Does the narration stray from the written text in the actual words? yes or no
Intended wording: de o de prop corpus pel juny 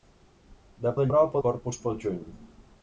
no